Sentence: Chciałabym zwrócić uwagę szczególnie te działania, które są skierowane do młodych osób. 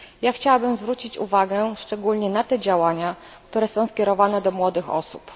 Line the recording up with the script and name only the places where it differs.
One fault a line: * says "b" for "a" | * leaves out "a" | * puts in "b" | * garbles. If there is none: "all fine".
* puts in "na"